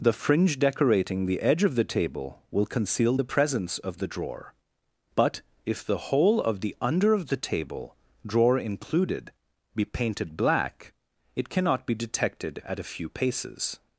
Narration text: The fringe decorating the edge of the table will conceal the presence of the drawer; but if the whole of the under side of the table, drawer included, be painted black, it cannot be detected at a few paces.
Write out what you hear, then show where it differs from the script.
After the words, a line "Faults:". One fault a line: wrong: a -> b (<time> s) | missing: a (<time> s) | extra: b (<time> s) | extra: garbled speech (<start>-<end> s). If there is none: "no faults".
The fringe decorating the edge of the table will conceal the presence of the drawer; but if the whole of the under of the table, drawer included, be painted black, it cannot be detected at a few paces.
Faults:
missing: side (7.2 s)